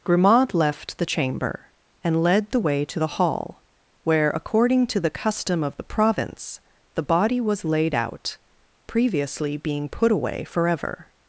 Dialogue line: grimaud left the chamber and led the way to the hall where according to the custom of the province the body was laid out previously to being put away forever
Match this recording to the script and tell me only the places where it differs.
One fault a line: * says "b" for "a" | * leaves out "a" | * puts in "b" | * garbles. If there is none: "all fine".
* leaves out "to"